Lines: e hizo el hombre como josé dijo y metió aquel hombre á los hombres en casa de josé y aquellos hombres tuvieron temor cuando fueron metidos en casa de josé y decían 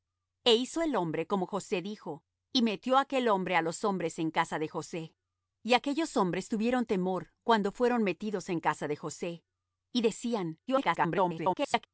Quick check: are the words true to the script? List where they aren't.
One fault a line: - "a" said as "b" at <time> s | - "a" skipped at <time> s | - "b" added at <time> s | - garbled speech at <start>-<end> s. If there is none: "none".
- garbled speech at 10.7-11.9 s